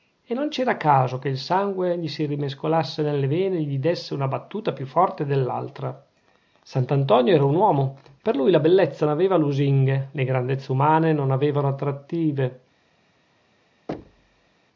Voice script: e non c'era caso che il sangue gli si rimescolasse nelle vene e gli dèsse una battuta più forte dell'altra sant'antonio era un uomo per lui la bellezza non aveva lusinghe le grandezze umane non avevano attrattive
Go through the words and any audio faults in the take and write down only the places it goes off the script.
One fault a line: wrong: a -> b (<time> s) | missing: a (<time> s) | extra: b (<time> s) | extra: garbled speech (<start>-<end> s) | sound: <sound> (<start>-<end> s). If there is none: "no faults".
missing: non (9.1 s)
sound: thud (13.9-14.5 s)